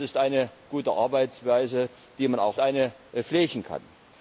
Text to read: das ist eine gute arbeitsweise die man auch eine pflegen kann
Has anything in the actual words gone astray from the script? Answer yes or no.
no